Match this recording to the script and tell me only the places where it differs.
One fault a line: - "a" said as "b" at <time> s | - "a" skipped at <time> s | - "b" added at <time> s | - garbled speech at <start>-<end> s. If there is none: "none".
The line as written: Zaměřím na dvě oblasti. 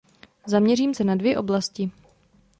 - "se" added at 0.9 s